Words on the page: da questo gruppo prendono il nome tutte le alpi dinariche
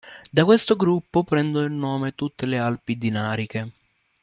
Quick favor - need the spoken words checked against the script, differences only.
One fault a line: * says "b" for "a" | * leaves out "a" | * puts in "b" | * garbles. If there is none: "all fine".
all fine